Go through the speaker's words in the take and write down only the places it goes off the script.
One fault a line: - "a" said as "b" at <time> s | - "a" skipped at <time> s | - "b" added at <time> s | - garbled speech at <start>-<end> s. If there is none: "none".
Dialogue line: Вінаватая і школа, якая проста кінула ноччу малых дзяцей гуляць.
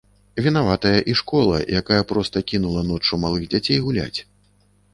none